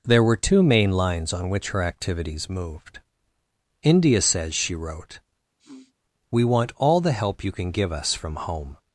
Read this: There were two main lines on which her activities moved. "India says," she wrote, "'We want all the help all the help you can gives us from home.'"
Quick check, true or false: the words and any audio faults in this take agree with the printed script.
false